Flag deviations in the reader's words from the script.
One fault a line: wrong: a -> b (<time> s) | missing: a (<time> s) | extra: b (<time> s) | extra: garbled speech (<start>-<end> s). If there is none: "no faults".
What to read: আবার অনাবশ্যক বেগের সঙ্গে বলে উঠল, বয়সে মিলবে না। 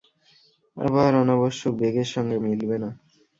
missing: বলে উঠল বয়সে (2.4 s)